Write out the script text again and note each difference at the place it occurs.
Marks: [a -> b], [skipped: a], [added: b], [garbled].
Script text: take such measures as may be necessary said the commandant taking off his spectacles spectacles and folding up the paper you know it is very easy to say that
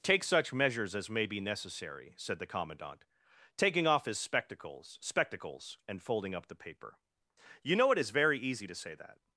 take such measures as may be necessary said the commandant taking off his spectacles spectacles and folding up the paper you know it is very easy to say that